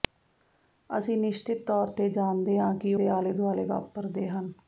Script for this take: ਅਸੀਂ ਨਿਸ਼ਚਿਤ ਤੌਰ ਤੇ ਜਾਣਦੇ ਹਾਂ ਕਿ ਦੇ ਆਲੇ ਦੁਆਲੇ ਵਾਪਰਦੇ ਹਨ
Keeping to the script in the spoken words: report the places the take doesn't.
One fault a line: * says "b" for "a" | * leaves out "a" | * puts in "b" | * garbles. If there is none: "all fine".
all fine